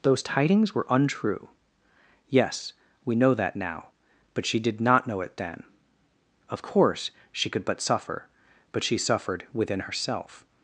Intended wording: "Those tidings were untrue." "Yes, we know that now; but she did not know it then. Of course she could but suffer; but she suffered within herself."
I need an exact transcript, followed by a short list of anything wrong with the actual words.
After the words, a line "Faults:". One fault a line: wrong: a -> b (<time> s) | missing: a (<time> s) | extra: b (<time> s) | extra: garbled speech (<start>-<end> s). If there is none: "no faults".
"Those tidings were untrue." "Yes, we know that now; but she did not know it then. Of course she could but suffer; but she suffered within herself."
Faults:
no faults